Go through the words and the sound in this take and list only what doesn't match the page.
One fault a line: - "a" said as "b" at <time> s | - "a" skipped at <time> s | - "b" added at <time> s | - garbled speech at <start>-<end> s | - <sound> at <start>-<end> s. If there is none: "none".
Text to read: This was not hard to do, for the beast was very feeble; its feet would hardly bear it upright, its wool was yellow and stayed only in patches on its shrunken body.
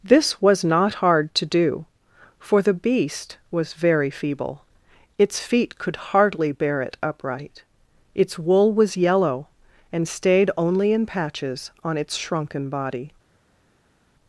- "would" said as "could" at 5.8 s